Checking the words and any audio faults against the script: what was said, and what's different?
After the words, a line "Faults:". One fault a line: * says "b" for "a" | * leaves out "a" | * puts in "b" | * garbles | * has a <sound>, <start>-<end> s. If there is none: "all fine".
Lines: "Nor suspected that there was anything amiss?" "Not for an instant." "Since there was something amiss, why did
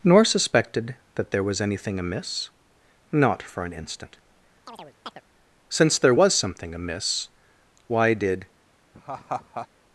"Nor suspected that there was anything amiss?" "Not for an instant." "Since there was something amiss, why did
Faults:
* has a chirp, 4.7-5.2 s
* has a laugh, 8.9-9.7 s